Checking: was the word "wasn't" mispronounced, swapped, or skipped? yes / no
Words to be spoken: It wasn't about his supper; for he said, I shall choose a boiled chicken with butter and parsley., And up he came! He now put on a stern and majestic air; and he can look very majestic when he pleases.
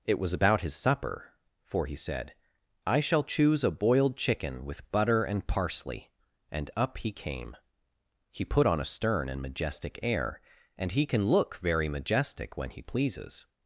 yes